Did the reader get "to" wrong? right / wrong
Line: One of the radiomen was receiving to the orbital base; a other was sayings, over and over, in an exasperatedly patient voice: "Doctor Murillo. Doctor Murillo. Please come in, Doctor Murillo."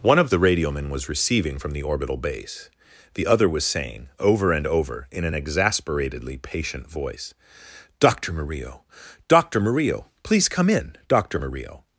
wrong